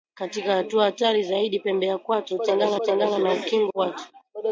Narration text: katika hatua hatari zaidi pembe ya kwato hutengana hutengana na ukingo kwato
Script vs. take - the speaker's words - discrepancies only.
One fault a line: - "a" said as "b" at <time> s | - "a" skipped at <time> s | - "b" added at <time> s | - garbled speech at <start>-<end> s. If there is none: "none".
none